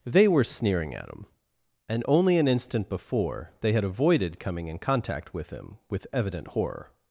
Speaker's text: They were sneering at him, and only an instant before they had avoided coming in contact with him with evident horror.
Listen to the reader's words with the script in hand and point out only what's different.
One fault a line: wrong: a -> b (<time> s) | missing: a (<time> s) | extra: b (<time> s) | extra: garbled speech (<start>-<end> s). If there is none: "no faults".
no faults